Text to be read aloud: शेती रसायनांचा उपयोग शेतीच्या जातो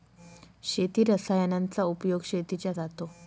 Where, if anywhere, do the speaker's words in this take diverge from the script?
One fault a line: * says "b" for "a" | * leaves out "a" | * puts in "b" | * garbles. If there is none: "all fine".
all fine